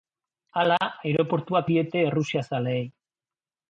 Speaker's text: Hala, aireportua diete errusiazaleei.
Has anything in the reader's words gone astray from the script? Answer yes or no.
no